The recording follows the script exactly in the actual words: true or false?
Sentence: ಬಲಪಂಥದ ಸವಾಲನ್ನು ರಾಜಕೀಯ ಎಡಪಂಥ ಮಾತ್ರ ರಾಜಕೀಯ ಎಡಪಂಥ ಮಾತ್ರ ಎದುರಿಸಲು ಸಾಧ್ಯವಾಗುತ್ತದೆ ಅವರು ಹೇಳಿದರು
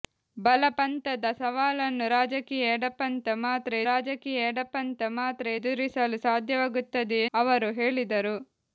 true